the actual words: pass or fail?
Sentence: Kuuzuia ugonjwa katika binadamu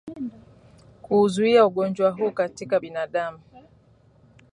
fail